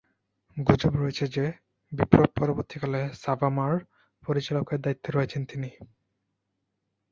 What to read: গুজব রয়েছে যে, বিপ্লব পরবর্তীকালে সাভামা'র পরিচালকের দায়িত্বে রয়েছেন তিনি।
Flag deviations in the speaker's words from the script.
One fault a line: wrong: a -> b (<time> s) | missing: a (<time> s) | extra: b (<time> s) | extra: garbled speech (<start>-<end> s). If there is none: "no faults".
no faults